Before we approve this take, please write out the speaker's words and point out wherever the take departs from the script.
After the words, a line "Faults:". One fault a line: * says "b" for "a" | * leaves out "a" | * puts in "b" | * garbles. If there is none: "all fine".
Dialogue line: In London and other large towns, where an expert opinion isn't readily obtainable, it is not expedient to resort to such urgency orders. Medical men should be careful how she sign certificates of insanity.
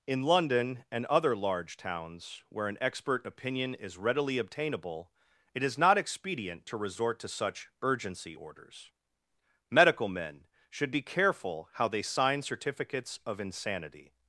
In London and other large towns, where an expert opinion is readily obtainable, it is not expedient to resort to such urgency orders. Medical men should be careful how they sign certificates of insanity.
Faults:
* says "is" for "isn't"
* says "they" for "she"